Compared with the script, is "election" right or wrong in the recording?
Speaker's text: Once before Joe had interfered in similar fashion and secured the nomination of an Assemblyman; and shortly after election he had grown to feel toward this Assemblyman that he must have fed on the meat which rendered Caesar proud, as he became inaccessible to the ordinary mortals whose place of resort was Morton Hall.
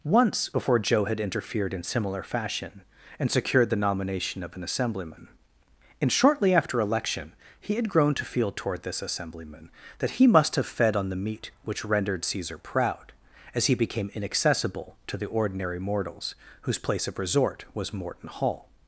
right